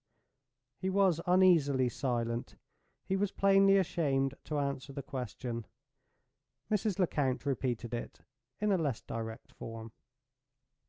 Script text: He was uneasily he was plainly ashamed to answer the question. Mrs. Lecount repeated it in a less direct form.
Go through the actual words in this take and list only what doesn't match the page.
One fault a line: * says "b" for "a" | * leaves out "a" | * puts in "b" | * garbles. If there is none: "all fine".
* puts in "silent"